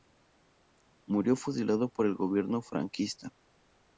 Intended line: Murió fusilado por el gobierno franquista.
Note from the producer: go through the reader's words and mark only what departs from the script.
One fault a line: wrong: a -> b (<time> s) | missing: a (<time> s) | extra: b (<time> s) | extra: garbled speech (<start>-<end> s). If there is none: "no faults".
no faults